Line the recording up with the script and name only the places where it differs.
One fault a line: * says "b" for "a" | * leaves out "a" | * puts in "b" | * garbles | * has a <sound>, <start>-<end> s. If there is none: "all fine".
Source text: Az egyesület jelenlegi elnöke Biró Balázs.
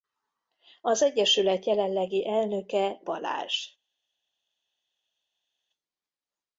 * leaves out "Biró"